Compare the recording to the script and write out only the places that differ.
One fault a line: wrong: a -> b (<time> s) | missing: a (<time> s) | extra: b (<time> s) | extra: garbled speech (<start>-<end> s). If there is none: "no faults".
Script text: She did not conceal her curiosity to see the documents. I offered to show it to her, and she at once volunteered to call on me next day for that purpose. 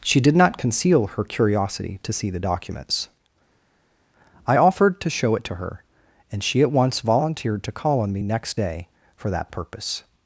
no faults